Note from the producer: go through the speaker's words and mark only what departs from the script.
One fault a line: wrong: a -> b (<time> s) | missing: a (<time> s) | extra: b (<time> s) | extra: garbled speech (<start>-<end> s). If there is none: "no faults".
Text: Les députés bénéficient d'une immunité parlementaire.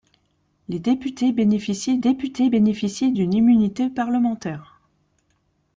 extra: députés bénéficient (2.0 s)